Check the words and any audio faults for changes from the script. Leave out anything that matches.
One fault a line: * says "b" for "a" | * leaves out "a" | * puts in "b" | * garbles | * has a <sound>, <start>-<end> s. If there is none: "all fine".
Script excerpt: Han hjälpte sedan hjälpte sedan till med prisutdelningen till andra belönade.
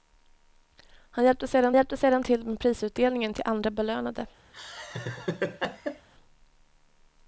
* has a laugh, 4.5-6.1 s